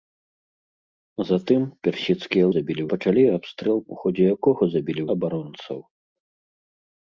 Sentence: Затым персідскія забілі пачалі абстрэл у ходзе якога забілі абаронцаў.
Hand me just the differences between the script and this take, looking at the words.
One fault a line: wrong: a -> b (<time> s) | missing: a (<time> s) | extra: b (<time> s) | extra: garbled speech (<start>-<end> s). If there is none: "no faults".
no faults